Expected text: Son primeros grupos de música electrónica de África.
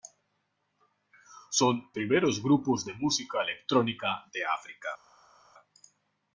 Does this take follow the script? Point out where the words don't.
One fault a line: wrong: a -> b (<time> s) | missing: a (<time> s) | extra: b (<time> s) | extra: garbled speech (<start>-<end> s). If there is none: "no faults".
no faults